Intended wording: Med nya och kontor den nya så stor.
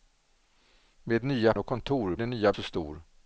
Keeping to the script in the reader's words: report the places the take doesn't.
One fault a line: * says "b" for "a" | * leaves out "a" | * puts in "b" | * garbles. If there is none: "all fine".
all fine